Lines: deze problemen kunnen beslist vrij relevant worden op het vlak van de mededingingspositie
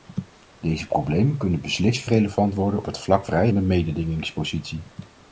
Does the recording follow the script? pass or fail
fail